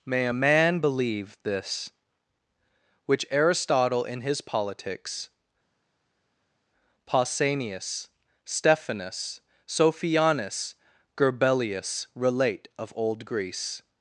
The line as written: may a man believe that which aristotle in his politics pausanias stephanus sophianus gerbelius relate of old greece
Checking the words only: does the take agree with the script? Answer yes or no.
no